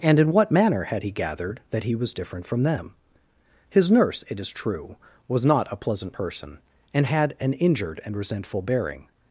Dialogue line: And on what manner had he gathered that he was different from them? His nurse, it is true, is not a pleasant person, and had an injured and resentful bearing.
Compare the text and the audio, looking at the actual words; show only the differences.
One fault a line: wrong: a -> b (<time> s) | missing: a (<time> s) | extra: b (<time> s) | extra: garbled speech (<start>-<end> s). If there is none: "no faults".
wrong: on -> in (0.2 s)
wrong: is -> was (5.3 s)